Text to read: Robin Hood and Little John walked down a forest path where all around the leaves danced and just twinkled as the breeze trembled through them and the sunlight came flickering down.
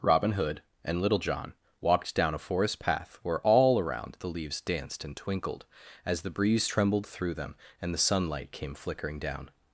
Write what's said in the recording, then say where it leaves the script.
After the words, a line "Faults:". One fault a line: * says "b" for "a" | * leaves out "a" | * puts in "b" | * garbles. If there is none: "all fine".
Robin Hood and Little John walked down a forest path where all around the leaves danced and twinkled as the breeze trembled through them and the sunlight came flickering down.
Faults:
* leaves out "just"